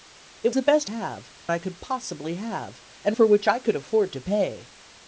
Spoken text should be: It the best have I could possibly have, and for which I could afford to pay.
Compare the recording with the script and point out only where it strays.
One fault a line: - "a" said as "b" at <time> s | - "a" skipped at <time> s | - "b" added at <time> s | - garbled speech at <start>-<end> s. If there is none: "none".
none